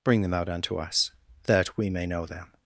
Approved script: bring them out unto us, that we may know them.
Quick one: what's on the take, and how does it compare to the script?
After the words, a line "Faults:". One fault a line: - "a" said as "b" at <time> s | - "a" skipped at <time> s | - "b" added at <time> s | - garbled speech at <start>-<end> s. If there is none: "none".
bring them out unto us, that we may know them.
Faults:
none